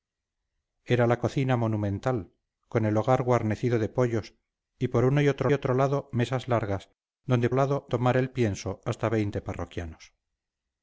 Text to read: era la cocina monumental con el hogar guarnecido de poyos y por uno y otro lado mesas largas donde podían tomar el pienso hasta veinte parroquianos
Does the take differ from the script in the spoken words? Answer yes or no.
yes